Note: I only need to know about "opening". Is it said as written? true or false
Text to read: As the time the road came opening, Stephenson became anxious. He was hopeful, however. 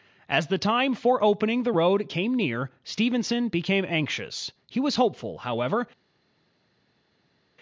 false